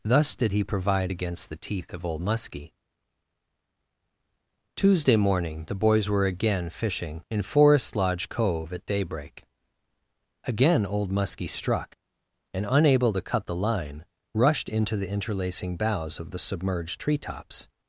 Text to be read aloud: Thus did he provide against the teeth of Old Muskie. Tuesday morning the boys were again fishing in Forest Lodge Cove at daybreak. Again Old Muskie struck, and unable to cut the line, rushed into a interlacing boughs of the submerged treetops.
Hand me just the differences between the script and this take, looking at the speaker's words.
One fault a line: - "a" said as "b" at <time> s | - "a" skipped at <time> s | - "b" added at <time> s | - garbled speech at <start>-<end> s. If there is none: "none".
- "a" said as "the" at 15.0 s